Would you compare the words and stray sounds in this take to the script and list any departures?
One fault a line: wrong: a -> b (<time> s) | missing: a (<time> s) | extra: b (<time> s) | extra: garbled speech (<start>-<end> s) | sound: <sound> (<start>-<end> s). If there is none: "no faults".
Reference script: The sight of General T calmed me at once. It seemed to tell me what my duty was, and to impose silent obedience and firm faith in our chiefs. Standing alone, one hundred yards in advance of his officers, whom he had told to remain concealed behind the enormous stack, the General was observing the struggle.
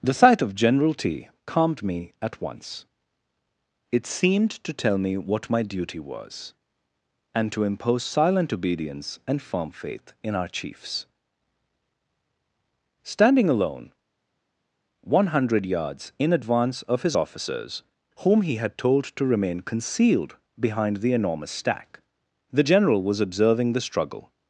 no faults